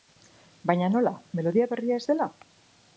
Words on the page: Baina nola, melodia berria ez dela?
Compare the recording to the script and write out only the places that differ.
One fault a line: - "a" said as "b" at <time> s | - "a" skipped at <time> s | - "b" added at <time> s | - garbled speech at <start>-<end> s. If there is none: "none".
none